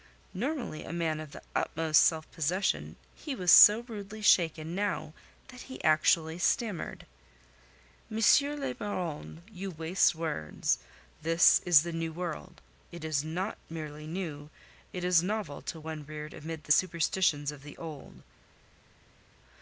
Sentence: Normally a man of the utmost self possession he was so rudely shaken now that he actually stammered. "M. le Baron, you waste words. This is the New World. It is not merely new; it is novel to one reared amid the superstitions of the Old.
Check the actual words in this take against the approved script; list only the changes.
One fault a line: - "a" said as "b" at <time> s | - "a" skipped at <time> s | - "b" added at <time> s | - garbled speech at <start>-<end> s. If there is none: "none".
none